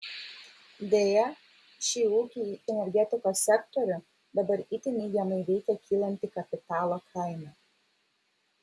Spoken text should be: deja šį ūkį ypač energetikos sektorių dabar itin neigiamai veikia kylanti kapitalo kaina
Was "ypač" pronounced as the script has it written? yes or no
no